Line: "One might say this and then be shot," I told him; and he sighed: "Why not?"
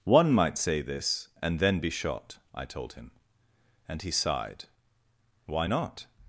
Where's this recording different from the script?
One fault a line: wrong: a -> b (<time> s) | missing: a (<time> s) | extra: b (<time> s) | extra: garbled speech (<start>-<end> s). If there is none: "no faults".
no faults